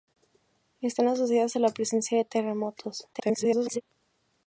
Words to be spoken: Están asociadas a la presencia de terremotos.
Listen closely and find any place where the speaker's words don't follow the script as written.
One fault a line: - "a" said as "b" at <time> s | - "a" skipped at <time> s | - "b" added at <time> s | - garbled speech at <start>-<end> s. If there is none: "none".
- garbled speech at 3.1-3.8 s